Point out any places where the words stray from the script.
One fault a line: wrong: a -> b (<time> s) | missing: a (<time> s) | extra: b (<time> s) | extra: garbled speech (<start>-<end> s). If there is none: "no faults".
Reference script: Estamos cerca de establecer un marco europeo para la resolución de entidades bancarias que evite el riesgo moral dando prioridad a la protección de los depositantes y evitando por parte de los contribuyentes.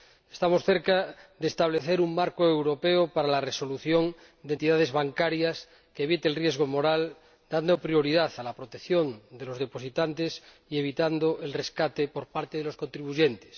extra: el rescate (11.4 s)